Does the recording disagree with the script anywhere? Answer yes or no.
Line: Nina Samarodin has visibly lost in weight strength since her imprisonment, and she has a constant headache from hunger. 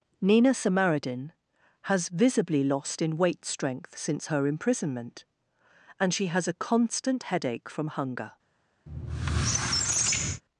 no